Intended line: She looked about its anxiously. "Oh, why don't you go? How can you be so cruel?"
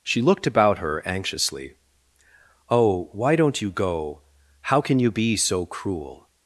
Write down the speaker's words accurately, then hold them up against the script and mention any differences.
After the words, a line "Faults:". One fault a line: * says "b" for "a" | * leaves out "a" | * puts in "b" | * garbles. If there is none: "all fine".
She looked about her anxiously. "Oh, why don't you go? How can you be so cruel?"
Faults:
* says "her" for "its"